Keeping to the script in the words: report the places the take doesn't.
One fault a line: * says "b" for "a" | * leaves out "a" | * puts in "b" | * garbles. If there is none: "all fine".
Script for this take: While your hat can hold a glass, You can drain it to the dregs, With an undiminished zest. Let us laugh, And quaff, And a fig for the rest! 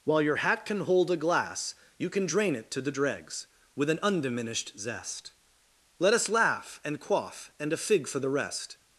all fine